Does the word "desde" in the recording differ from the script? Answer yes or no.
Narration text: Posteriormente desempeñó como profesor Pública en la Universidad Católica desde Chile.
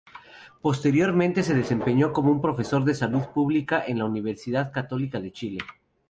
yes